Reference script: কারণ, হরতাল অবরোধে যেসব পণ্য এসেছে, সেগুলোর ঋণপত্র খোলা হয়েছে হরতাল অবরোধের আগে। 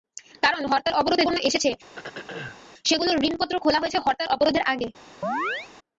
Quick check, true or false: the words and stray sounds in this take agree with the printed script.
false